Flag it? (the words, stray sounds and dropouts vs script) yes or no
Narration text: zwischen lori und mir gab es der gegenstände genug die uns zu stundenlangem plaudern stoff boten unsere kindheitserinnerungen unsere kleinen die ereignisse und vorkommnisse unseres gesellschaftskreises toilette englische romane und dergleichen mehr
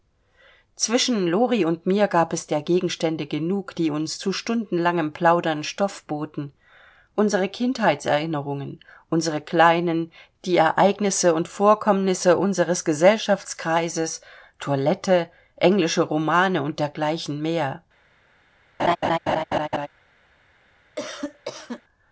yes